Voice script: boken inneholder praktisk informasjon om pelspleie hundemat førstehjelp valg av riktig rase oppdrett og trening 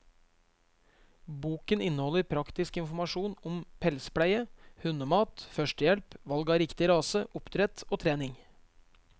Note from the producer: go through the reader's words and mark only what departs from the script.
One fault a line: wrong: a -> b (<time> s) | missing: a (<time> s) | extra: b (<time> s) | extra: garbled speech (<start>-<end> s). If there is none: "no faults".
no faults